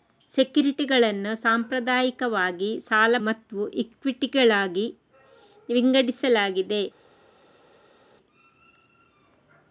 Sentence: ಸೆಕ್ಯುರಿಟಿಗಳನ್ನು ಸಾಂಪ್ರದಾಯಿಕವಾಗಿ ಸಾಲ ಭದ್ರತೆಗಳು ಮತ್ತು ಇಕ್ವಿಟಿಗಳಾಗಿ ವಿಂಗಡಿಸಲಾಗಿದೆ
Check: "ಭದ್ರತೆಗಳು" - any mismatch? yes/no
yes